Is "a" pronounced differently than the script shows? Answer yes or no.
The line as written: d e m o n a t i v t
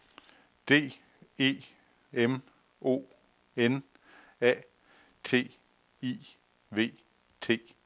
no